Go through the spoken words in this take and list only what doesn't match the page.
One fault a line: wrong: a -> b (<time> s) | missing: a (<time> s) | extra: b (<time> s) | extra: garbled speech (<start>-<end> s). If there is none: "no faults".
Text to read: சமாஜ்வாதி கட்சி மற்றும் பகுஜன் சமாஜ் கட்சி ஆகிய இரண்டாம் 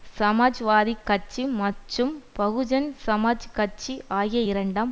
no faults